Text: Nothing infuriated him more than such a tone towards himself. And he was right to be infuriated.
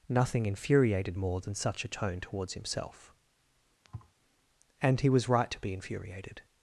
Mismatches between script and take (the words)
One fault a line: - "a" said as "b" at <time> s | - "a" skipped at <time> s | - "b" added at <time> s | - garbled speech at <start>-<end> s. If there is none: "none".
- "him" skipped at 1.2 s